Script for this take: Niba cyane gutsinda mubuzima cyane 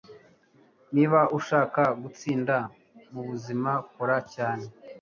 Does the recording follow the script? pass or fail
fail